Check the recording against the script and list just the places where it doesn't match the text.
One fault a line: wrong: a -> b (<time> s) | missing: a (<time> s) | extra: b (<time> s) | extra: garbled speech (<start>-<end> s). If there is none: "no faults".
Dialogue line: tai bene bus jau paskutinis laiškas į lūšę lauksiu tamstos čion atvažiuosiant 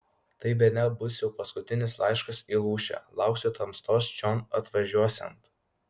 no faults